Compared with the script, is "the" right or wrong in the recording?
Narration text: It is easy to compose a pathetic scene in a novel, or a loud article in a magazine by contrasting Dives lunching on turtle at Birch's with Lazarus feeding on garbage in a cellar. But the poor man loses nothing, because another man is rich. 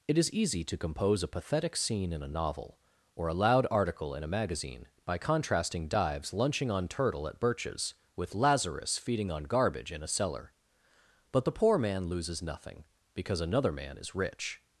right